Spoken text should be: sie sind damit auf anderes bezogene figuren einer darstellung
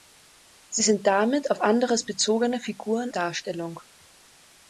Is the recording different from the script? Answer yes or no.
yes